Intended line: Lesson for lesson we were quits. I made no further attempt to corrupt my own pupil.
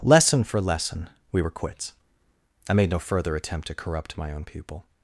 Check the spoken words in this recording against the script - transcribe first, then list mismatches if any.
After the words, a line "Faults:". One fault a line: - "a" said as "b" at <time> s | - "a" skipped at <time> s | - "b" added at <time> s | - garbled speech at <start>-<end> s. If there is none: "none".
Lesson for lesson we were quits. I made no further attempt to corrupt my own pupil.
Faults:
none